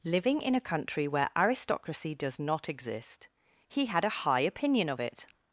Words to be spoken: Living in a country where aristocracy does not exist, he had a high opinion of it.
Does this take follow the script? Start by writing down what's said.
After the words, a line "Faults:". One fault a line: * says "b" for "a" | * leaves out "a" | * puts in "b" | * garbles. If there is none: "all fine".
Living in a country where aristocracy does not exist, he had a high opinion of it.
Faults:
all fine